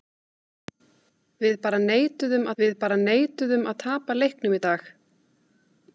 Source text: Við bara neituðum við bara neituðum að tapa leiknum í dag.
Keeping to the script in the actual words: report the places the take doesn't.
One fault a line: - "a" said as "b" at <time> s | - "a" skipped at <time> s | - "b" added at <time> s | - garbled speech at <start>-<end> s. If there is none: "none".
none